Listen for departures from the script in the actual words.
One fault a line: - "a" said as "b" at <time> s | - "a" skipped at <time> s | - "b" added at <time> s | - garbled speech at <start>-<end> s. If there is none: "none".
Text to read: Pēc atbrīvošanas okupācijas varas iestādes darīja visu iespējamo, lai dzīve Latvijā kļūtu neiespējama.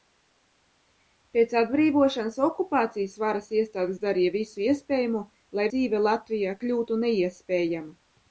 none